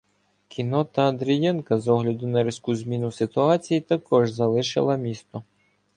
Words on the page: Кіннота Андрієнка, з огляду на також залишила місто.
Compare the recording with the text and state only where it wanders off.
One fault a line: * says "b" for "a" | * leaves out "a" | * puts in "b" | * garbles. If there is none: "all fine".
* puts in "різку зміну ситуації"